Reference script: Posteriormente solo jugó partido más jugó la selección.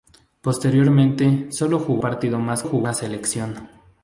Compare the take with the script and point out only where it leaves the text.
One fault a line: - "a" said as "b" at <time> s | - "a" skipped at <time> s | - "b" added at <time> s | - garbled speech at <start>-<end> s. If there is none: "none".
none